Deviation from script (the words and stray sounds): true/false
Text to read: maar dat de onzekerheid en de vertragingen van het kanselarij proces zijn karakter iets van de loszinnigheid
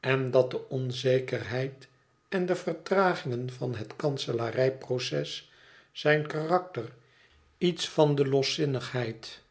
true